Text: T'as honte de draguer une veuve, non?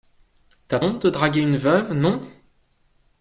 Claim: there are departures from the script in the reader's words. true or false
false